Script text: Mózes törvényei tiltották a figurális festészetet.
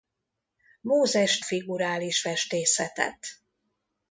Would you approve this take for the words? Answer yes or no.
no